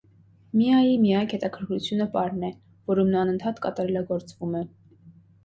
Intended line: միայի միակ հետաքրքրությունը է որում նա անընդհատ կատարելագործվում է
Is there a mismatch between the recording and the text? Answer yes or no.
yes